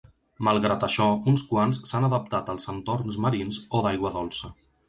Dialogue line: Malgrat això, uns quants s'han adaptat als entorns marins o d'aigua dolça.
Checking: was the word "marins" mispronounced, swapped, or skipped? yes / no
no